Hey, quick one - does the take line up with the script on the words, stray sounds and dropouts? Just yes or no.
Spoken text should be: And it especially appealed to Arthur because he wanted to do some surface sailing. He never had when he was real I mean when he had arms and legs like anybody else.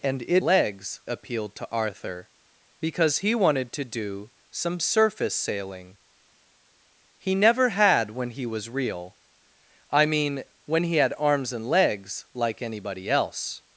no